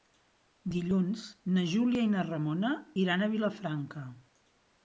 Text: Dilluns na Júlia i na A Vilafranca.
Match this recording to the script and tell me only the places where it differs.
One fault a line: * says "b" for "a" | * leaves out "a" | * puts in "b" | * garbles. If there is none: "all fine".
* puts in "Ramona iran"